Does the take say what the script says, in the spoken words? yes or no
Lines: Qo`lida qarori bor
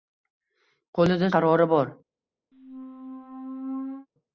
yes